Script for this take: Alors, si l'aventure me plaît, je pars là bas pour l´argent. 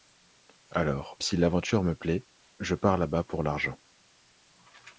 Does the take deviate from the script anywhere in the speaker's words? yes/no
no